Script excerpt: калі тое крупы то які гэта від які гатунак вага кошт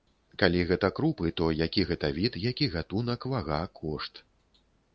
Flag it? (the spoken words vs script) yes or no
yes